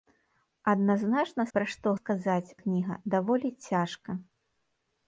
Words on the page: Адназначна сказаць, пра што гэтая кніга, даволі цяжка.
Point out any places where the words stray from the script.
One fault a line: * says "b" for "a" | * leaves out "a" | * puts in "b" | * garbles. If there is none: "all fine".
* leaves out "сказаць"
* says "сказаць" for "гэтая"